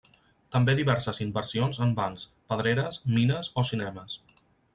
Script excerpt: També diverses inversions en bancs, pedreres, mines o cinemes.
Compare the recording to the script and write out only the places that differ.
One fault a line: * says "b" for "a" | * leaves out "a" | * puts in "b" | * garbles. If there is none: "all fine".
all fine